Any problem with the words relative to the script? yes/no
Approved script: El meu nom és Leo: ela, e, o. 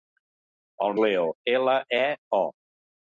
yes